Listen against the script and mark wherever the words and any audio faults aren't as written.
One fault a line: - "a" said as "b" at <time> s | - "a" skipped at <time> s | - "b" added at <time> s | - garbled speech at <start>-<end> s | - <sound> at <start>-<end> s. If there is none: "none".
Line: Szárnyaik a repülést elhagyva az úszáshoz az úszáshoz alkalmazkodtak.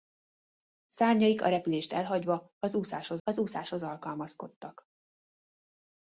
none